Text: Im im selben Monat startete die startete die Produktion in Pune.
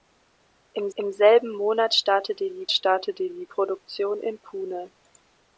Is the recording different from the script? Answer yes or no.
no